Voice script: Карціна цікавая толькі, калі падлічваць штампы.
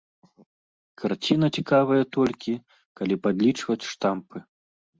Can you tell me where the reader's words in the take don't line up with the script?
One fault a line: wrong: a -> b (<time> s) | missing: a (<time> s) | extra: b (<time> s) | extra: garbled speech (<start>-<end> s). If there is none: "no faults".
no faults